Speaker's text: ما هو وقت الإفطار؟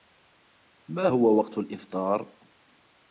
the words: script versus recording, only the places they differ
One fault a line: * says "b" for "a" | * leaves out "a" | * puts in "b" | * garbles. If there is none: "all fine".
all fine